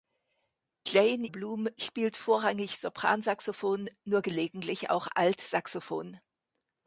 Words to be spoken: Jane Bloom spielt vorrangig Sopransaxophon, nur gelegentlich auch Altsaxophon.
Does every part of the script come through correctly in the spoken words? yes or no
yes